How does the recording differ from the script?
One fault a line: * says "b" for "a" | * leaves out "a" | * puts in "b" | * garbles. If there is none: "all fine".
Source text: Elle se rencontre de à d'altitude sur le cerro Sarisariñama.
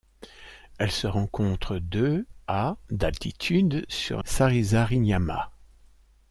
* leaves out "le cerro"